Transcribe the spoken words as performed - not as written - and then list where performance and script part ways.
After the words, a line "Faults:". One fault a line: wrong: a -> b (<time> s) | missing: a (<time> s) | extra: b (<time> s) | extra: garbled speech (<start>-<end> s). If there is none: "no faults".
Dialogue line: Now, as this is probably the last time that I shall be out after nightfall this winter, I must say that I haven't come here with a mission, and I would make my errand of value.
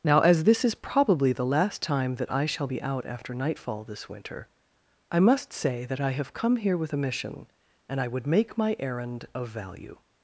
Now, as this is probably the last time that I shall be out after nightfall this winter, I must say that I have come here with a mission, and I would make my errand of value.
Faults:
wrong: haven't -> have (6.1 s)